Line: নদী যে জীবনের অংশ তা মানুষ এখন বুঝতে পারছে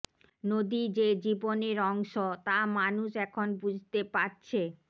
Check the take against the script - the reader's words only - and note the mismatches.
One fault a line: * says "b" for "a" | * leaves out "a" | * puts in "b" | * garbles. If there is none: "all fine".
all fine